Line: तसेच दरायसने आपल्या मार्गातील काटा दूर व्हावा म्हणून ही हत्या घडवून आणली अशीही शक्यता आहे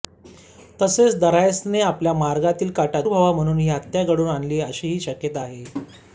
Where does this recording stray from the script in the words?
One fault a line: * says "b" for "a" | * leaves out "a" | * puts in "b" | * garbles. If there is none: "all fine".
* leaves out "दूर"